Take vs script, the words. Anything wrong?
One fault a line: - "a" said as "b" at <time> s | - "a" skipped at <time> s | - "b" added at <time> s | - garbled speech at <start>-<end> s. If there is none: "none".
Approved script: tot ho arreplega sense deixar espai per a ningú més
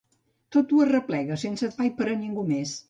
- "deixar" skipped at 1.7 s